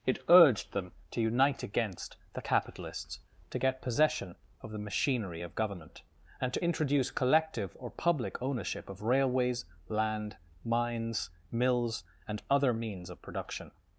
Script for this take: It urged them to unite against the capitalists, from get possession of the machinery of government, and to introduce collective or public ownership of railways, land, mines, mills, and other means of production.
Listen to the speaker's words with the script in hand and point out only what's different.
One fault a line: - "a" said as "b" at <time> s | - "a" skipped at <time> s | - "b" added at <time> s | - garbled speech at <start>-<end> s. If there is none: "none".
- "from" said as "to" at 3.5 s